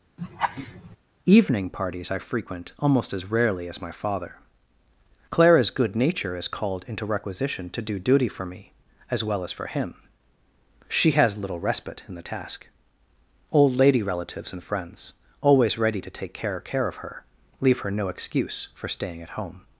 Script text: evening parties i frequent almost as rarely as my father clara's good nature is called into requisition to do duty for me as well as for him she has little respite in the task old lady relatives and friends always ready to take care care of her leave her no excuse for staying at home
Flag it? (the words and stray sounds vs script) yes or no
yes